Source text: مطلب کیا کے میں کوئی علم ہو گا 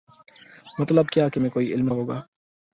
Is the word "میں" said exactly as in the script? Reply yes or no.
yes